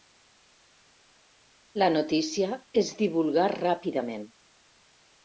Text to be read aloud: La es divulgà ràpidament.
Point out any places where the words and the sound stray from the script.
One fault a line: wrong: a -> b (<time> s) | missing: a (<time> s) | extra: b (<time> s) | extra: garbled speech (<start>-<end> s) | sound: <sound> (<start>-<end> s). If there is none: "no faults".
extra: notícia (1.9 s)